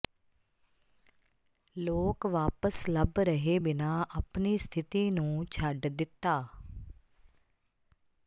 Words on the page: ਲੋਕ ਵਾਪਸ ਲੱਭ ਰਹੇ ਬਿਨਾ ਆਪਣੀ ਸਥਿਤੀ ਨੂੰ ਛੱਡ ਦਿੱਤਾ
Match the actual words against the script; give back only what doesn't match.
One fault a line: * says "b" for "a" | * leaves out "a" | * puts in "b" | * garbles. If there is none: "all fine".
all fine